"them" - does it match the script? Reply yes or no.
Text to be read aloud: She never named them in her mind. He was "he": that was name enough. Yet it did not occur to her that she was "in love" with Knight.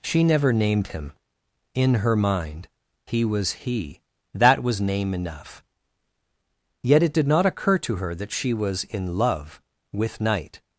no